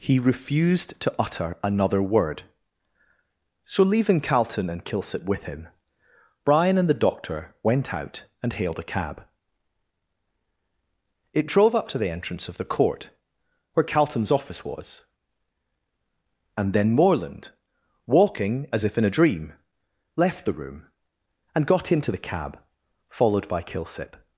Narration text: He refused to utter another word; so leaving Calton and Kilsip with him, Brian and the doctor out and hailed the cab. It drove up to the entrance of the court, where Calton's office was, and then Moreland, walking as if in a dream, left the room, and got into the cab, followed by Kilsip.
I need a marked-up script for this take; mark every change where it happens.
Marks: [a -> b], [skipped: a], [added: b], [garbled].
He refused to utter another word; so leaving Calton and Kilsip with him, Brian and the doctor [added: went] out and hailed [the -> a] cab. It drove up to the entrance of the court, where Calton's office was, and then Moreland, walking as if in a dream, left the room, and got into the cab, followed by Kilsip.